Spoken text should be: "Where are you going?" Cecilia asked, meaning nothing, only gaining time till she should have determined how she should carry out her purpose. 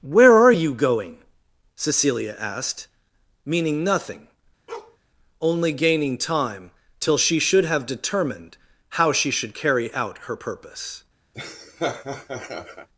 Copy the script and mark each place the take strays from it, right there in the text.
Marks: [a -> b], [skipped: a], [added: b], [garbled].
"Where are you going?" Cecilia asked, meaning nothing, only gaining time till she should have determined how she should carry out her purpose.